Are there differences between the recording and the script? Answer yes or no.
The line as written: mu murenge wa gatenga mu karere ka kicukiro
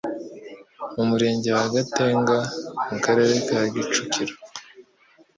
no